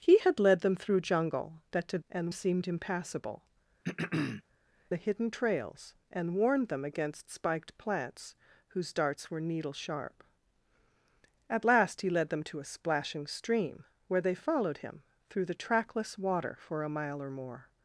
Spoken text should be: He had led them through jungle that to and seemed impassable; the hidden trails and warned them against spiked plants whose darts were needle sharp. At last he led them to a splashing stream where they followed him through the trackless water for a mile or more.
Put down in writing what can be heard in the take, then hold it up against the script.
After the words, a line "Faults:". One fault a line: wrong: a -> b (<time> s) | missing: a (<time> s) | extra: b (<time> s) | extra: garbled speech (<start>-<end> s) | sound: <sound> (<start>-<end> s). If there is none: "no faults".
He had led them through jungle that to and seemed impassable; the hidden trails and warned them against spiked plants whose darts were needle sharp. At last he led them to a splashing stream where they followed him through the trackless water for a mile or more.
Faults:
sound: throat clearing (3.8-4.4 s)